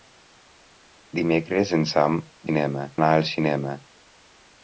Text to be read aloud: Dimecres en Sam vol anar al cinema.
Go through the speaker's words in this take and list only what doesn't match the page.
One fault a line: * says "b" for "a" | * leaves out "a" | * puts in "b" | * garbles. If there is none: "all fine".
* says "cinema" for "vol"